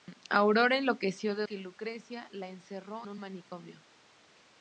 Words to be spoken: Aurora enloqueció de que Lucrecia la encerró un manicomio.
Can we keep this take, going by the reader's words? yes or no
yes